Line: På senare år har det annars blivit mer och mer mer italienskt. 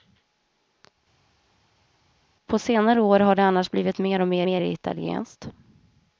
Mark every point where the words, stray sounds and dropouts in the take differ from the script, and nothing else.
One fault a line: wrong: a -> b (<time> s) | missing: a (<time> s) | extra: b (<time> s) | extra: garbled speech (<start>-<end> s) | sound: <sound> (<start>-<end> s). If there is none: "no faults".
no faults